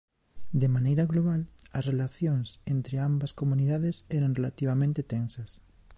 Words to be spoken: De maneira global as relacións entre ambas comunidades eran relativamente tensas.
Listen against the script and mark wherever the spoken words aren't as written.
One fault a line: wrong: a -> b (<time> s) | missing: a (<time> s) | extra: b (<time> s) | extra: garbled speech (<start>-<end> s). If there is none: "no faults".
no faults